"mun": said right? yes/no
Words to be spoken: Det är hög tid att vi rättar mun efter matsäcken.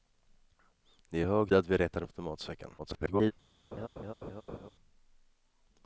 no